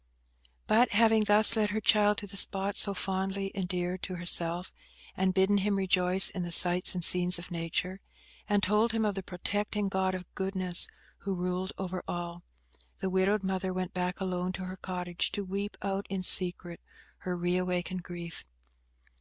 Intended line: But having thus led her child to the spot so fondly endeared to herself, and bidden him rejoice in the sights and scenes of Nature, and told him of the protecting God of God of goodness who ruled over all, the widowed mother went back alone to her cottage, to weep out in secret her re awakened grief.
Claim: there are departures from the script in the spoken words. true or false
true